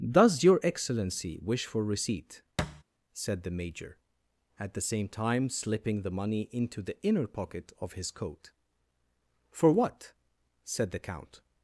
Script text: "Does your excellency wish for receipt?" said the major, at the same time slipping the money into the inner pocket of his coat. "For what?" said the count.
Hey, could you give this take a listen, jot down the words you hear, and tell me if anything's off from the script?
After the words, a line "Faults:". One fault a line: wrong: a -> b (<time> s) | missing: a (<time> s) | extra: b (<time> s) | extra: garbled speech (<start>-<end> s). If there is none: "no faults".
"Does your excellency wish for receipt?" said the major, at the same time slipping the money into the inner pocket of his coat. "For what?" said the count.
Faults:
no faults